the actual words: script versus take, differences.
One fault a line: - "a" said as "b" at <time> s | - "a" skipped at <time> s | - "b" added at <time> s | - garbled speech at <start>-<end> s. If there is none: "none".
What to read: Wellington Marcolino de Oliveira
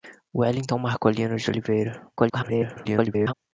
- garbled speech at 2.2-3.3 s